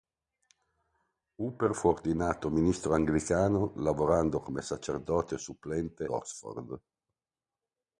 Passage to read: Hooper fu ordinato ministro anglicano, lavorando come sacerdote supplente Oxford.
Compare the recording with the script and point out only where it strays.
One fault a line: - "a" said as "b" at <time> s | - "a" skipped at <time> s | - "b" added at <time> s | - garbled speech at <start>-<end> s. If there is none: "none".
none